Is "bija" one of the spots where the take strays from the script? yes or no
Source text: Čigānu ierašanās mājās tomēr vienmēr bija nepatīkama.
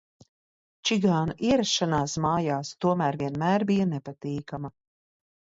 no